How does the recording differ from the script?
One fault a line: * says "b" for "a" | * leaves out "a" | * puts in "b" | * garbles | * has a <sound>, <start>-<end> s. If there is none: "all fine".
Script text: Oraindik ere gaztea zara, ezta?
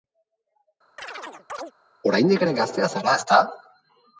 * has a chirp, 1.0-1.7 s